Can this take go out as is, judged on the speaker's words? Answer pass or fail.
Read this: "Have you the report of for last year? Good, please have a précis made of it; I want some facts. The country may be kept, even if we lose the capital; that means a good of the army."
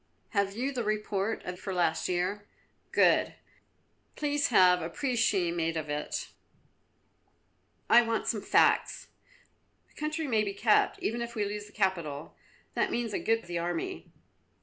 pass